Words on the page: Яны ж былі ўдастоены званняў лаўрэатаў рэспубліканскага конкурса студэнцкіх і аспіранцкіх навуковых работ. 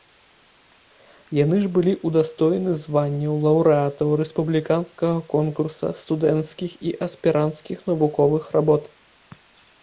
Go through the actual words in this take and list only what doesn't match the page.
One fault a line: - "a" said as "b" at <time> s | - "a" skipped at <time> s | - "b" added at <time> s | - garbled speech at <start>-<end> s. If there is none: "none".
none